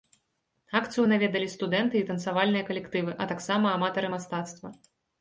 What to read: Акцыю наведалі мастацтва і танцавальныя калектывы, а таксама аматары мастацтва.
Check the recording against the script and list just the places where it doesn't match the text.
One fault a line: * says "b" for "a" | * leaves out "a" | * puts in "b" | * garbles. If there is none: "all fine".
* says "студэнты" for "мастацтва"